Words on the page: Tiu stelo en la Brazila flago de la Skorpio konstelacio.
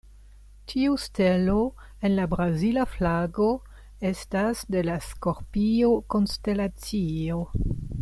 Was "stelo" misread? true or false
false